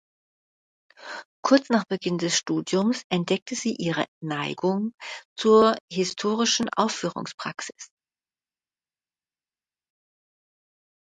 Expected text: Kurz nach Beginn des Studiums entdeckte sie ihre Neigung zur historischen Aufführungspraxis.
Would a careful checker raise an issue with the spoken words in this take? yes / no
no